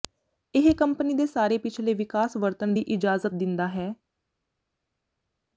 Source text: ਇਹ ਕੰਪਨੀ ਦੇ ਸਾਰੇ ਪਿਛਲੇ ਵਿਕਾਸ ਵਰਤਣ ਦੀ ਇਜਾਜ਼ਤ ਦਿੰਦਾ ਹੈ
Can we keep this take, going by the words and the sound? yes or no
yes